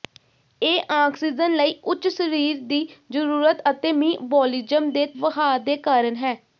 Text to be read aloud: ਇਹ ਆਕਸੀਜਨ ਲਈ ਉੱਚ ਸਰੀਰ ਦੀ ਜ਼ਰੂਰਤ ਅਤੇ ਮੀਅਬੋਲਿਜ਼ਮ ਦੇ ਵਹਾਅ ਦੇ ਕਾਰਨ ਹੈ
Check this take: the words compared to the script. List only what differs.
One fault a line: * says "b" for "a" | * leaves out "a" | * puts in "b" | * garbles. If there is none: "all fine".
all fine